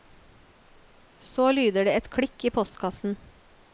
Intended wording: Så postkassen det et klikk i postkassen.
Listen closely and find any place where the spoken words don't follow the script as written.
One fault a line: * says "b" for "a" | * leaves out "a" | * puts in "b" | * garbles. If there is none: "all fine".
* says "lyder" for "postkassen"